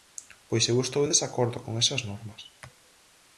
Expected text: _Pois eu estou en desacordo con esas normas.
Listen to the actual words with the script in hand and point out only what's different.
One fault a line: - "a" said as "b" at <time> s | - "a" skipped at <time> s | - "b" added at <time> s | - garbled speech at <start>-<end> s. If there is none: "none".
none